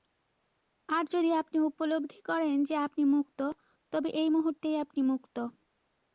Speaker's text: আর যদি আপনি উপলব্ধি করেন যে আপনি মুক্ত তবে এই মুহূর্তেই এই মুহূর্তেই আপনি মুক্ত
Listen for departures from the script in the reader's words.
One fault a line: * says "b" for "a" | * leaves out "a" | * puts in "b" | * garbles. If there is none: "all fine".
* leaves out "এই মুহূর্তেই"